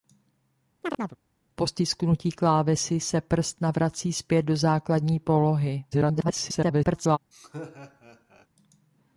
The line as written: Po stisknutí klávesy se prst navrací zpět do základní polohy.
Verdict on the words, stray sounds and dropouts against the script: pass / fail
fail